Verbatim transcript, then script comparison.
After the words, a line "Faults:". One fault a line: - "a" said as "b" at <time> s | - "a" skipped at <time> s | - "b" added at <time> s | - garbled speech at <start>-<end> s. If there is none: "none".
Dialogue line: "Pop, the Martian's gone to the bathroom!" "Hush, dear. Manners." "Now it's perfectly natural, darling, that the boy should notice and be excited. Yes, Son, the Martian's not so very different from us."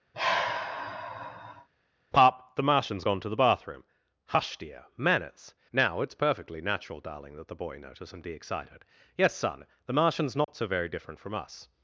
"Pop, the Martian's gone to the bathroom!" "Hush, dear. Manners." "Now it's perfectly natural, darling, that the boy notice and be excited. Yes, Son, the Martian's not so very different from us."
Faults:
- "should" skipped at 7.8 s